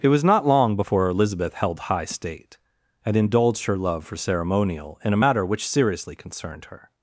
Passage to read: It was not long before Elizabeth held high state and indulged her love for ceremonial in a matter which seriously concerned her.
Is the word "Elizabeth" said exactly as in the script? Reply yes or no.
yes